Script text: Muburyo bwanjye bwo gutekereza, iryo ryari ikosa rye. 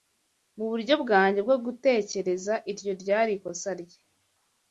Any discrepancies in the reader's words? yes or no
no